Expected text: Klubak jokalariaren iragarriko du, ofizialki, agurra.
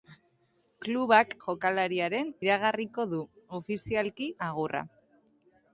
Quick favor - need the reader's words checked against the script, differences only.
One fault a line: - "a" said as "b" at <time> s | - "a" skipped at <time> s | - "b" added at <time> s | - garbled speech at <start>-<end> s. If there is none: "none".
none